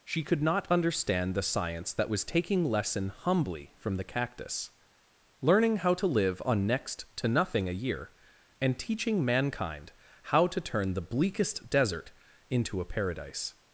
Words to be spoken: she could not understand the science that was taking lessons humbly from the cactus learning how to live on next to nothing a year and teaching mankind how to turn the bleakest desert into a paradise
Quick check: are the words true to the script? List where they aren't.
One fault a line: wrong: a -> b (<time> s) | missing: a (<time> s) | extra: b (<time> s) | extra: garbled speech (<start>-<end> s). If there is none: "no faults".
wrong: lessons -> lesson (2.6 s)